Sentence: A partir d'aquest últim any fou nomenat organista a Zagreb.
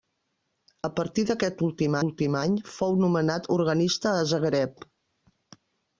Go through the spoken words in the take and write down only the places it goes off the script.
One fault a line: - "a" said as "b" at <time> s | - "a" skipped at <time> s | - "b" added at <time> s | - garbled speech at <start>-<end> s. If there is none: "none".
- "últim" added at 2.1 s